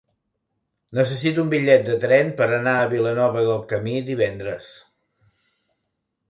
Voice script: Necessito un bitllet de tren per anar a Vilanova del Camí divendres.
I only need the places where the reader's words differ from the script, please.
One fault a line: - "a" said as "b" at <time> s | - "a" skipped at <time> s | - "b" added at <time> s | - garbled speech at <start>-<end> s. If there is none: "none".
none